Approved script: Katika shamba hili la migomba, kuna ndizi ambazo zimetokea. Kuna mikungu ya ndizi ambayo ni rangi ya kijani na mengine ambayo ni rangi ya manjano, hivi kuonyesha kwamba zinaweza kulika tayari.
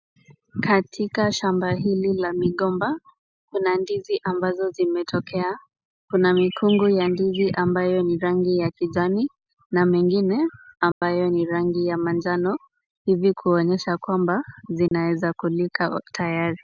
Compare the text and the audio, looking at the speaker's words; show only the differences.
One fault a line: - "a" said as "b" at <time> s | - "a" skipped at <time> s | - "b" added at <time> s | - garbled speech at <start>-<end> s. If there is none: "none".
none